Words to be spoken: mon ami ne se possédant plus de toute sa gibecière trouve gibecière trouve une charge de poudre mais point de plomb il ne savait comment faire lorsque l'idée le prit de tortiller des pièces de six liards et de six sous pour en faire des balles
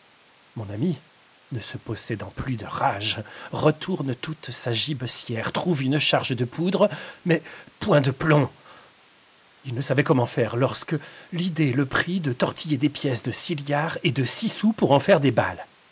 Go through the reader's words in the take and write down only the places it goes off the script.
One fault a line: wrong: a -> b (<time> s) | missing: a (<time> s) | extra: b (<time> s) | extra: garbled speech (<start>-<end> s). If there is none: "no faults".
extra: rage retourne (2.6 s)
missing: gibecière trouve (5.8 s)